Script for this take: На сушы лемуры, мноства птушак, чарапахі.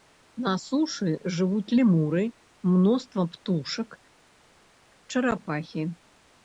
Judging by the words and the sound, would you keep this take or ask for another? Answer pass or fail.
fail